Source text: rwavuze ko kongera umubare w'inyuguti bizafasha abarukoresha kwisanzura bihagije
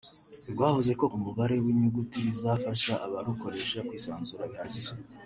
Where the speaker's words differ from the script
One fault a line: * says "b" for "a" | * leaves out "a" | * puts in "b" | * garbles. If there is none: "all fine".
* leaves out "kongera"